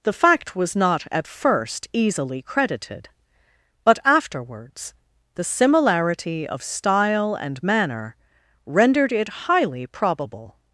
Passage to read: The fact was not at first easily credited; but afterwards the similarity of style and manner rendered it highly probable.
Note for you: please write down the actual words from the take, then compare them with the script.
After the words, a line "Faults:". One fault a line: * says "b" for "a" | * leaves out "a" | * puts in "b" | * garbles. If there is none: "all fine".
The fact was not at first easily credited; but afterwards the similarity of style and manner rendered it highly probable.
Faults:
all fine